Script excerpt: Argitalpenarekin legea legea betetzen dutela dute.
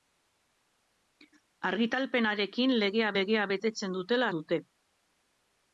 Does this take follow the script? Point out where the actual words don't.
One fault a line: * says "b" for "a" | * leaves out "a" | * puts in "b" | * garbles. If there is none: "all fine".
all fine